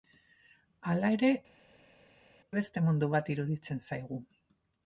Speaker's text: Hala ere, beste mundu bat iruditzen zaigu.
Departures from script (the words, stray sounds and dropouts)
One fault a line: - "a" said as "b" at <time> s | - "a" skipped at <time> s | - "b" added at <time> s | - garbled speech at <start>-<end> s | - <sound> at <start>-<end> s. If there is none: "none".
none